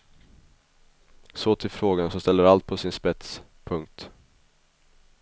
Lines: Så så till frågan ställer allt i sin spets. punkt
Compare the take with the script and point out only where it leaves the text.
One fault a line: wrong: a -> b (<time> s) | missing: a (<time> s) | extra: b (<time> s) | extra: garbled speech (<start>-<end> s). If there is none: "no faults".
missing: så (1.6 s)
extra: som (2.1 s)
wrong: i -> på (2.7 s)